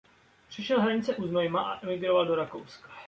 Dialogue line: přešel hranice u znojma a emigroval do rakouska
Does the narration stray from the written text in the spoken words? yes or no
no